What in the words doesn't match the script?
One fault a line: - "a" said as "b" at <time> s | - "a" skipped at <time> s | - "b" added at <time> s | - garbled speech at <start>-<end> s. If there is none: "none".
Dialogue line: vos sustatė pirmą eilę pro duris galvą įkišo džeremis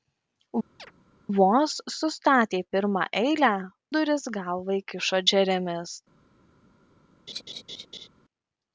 - "pro" skipped at 3.5 s